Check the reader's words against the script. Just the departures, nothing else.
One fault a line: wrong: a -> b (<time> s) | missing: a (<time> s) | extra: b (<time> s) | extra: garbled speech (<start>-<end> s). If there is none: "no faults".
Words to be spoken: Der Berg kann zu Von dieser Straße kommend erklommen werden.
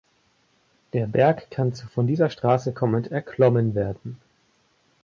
no faults